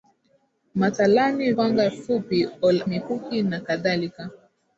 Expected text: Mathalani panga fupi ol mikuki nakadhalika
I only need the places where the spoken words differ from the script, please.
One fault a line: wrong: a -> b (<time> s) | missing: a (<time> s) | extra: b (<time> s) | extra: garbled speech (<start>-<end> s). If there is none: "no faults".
no faults